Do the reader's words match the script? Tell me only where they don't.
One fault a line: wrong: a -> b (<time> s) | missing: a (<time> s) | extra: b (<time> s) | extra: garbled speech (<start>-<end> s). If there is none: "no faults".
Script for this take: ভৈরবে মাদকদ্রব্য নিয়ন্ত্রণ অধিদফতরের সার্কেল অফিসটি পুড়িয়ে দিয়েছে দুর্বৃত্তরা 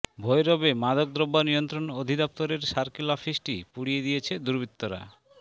no faults